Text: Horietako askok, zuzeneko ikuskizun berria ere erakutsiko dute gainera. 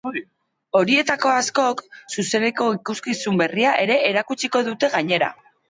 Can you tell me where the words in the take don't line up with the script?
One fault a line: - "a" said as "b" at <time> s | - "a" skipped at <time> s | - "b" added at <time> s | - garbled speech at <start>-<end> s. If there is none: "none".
none